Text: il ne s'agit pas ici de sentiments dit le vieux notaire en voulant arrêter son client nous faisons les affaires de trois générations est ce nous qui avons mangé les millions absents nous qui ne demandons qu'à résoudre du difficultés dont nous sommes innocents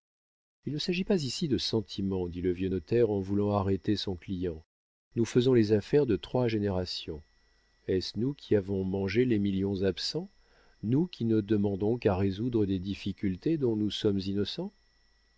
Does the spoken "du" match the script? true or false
false